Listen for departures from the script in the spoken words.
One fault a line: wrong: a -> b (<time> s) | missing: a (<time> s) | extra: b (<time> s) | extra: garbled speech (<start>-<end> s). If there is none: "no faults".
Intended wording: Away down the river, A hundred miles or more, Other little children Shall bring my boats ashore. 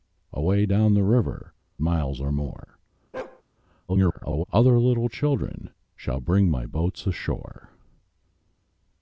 missing: A hundred (1.5 s)
extra: garbled speech (3.9-4.4 s)